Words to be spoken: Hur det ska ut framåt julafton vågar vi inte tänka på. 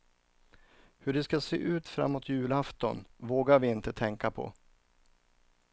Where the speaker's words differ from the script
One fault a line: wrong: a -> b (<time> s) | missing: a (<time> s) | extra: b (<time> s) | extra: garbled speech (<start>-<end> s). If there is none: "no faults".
extra: se (1.4 s)